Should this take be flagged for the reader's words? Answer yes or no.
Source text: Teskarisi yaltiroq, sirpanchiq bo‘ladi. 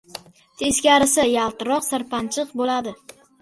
no